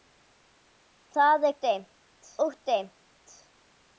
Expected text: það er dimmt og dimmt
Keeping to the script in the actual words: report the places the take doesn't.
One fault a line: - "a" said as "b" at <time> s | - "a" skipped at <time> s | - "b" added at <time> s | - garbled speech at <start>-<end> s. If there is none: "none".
none